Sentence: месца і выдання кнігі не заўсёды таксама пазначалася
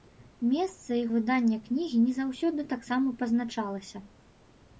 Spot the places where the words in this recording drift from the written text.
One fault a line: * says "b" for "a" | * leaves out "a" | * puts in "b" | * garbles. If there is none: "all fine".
all fine